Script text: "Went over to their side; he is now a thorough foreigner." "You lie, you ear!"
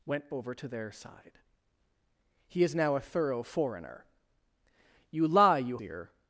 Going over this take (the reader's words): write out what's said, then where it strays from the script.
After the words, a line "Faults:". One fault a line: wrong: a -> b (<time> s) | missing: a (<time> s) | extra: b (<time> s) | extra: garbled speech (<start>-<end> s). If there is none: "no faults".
"Went over to their side; he is now a thorough foreigner." "You lie, you ear!"
Faults:
no faults